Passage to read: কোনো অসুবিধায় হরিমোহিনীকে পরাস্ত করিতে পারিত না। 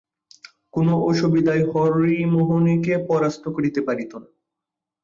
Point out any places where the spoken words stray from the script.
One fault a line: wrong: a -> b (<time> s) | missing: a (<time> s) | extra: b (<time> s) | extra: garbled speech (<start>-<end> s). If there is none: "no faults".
no faults